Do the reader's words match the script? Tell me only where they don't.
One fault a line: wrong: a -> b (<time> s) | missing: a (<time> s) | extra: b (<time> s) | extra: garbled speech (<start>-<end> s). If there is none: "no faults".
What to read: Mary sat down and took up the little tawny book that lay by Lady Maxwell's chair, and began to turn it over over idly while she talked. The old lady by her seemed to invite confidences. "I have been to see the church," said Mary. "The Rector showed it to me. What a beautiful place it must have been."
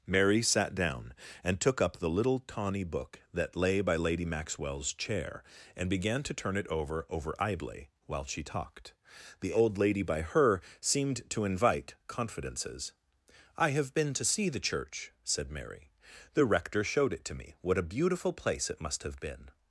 no faults